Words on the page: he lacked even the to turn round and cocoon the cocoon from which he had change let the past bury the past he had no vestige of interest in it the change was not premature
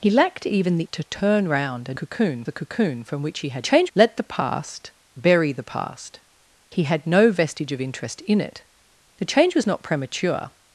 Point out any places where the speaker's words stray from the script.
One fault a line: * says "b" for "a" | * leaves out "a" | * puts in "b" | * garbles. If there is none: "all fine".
all fine